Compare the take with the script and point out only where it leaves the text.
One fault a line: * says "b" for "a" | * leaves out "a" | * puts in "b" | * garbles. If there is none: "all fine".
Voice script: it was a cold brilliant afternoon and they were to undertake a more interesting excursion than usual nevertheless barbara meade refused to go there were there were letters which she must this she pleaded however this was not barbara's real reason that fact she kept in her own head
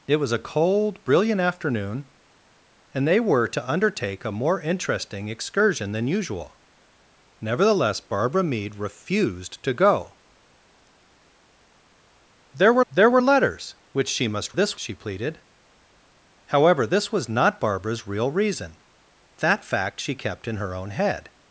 all fine